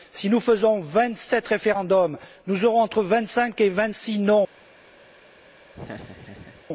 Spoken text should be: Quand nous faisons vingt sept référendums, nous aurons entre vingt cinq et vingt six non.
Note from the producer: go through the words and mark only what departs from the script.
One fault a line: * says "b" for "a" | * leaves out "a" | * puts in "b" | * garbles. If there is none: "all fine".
* says "Si" for "Quand"